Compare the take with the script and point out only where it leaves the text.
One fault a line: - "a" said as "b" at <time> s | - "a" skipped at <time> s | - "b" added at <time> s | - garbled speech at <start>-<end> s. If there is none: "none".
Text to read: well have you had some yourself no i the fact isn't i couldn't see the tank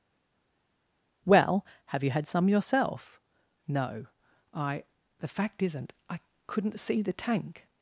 none